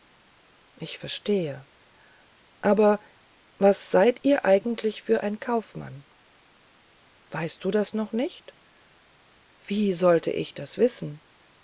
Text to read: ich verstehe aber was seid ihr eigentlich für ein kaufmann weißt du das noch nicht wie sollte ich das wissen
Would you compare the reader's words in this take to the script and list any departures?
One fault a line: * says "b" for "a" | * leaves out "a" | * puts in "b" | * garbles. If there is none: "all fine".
all fine